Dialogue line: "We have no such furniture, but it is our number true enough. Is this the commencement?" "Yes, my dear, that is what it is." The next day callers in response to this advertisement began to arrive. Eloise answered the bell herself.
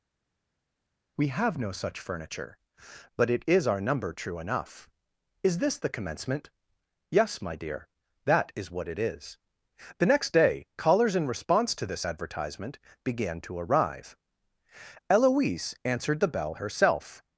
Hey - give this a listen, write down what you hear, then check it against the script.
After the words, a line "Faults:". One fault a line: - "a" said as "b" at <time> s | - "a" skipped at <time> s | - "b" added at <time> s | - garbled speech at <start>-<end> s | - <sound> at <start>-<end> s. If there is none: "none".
"We have no such furniture, but it is our number true enough. Is this the commencement?" "Yes, my dear, that is what it is." The next day callers in response to this advertisement began to arrive. Eloise answered the bell herself.
Faults:
none